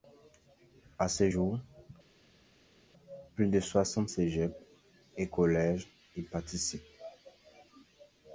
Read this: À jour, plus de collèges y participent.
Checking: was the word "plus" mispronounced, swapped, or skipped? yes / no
no